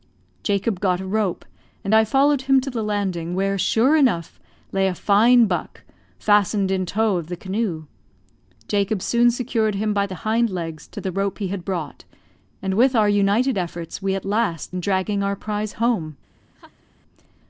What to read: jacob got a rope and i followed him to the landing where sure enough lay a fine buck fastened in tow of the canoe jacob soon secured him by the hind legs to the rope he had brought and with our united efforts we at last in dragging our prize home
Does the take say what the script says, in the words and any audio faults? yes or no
no